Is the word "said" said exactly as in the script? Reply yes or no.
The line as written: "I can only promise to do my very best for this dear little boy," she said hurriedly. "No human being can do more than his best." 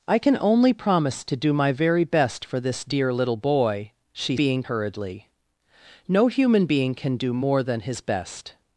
no